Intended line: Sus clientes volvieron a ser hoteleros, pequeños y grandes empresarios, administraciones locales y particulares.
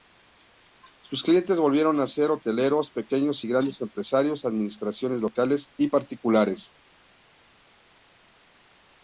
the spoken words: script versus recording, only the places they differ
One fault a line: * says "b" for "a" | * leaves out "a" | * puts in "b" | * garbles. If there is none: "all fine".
all fine